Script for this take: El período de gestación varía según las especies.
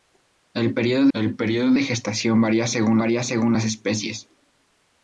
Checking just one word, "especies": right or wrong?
right